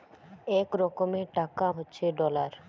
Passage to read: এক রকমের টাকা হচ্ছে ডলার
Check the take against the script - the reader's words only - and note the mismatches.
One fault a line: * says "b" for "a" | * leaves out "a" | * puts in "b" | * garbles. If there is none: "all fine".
all fine